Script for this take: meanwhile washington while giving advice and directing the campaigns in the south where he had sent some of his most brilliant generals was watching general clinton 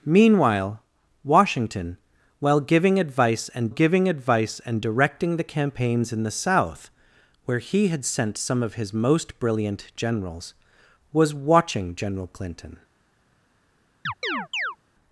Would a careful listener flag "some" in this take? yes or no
no